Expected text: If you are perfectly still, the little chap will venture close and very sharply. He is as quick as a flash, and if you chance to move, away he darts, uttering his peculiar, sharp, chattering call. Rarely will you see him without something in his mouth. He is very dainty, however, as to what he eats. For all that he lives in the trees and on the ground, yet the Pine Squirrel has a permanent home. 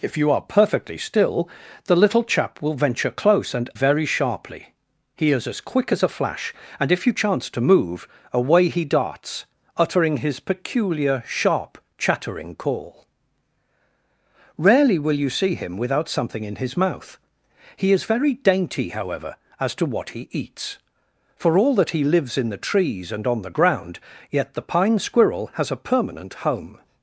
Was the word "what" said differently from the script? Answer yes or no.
no